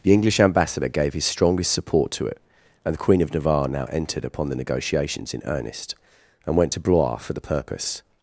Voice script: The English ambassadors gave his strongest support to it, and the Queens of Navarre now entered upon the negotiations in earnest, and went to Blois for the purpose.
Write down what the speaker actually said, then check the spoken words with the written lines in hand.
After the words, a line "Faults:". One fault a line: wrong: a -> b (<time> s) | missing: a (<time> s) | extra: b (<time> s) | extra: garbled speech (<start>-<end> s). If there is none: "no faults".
The English ambassador gave his strongest support to it, and the Queen of Navarre now entered upon the negotiations in earnest, and went to Blois for the purpose.
Faults:
wrong: ambassadors -> ambassador (0.4 s)
wrong: Queens -> Queen (3.0 s)